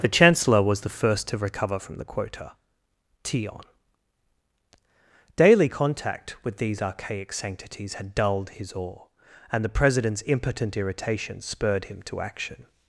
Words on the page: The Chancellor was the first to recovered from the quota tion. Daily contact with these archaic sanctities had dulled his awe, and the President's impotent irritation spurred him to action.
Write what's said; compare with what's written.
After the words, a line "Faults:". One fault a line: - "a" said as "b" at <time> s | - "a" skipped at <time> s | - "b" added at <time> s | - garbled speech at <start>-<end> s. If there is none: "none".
The Chancellor was the first to recover from the quota tion. Daily contact with these archaic sanctities had dulled his awe, and the President's impotent irritation spurred him to action.
Faults:
- "recovered" said as "recover" at 1.4 s